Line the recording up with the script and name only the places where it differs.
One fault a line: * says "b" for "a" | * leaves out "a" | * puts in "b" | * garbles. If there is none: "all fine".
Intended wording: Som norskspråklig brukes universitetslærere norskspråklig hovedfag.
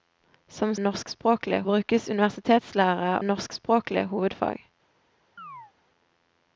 all fine